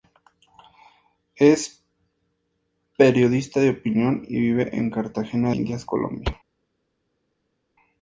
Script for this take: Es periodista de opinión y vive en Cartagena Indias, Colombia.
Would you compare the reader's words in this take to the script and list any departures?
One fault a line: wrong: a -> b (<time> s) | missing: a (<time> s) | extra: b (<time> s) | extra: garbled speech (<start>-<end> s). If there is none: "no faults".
no faults